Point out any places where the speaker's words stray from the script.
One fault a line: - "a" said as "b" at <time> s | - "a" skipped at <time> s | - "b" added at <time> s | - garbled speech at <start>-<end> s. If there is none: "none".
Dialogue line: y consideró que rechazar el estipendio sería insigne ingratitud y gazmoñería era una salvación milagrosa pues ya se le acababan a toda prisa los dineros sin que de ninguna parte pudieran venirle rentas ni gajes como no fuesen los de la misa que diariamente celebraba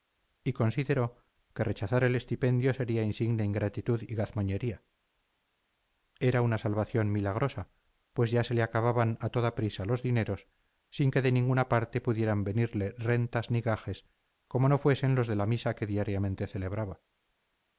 none